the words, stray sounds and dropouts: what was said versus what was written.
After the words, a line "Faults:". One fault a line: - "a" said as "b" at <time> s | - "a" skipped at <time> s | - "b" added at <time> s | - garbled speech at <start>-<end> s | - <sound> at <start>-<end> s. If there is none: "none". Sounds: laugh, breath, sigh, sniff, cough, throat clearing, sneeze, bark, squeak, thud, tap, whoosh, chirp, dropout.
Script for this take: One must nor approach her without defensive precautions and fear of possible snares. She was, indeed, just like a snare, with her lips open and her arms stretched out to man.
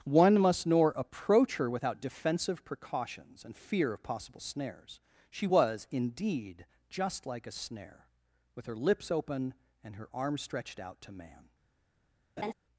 One must nor approach her without defensive precautions and fear of possible snares. She was, indeed, just like a snare, with her lips open and her arms stretched out to man.
Faults:
- laugh at 12.4-12.5 s